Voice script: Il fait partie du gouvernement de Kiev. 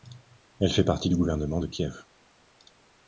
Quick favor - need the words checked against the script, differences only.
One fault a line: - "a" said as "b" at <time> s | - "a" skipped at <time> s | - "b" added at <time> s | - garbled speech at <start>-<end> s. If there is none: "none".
- "Il" said as "Elle" at 0.6 s